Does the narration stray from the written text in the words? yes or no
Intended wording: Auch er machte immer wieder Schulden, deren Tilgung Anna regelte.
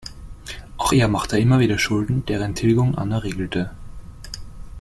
no